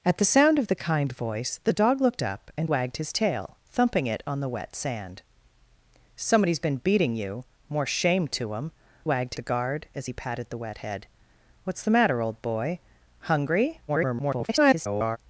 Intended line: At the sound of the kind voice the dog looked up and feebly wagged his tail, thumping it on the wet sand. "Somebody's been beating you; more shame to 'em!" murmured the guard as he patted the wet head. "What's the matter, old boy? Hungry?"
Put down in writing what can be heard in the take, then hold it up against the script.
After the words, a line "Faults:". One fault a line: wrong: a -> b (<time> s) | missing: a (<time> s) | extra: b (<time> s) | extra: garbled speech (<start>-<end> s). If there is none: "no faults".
At the sound of the kind voice the dog looked up and wagged his tail, thumping it on the wet sand. "Somebody's been beating you; more shame to 'em!" wagged the guard as he patted the wet head. "What's the matter, old boy? Hungry?" [garbled]
Faults:
missing: feebly (2.7 s)
wrong: murmured -> wagged (9.0 s)
extra: garbled speech (13.9-15.2 s)